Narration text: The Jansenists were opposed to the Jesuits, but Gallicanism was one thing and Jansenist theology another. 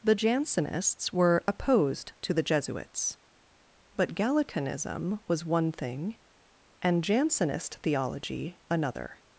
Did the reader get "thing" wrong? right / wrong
right